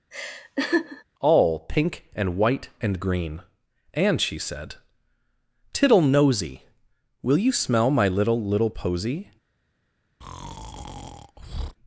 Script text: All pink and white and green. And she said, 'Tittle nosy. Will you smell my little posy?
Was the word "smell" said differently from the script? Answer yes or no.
no